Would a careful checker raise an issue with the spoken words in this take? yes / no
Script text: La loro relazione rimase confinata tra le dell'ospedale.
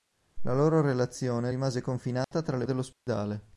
no